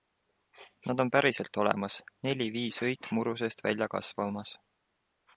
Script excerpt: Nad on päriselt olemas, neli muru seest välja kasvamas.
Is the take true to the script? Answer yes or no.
no